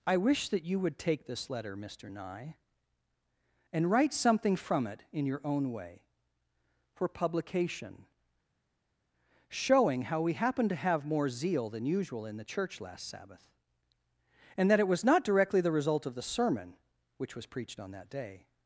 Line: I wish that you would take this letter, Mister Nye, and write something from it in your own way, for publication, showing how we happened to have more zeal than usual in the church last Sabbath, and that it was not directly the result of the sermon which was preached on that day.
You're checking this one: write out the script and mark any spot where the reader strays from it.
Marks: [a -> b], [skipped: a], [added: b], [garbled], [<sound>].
I wish that you would take this letter, Mister Nye, and write something from it in your own way, for publication, showing how we happened to have more zeal than usual in the church last Sabbath, and that it was not directly the result of the sermon which was preached on that day.